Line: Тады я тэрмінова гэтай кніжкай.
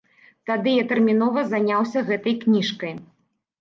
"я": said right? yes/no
yes